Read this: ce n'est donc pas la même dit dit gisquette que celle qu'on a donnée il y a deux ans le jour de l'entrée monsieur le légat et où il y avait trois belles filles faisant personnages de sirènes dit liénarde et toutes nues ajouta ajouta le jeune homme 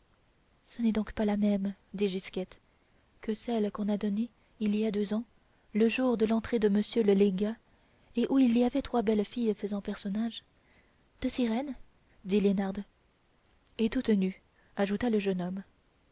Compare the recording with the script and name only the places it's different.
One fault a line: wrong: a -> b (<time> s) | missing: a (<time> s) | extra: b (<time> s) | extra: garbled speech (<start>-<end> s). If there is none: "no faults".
missing: dit (2.1 s)
extra: de (6.6 s)
missing: ajouta (15.1 s)